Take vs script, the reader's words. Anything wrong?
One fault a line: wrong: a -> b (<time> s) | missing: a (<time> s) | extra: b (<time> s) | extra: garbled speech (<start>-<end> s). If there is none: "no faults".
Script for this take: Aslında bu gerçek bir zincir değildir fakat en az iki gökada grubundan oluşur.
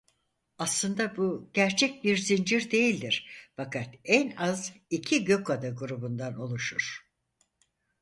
no faults